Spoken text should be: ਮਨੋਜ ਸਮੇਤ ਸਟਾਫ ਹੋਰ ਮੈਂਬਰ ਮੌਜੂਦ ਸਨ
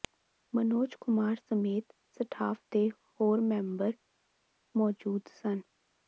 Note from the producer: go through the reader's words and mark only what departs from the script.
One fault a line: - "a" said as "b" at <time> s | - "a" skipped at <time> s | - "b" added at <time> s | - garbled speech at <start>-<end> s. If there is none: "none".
- "ਕੁਮਾਰ" added at 1.0 s
- "ਦੇ" added at 2.7 s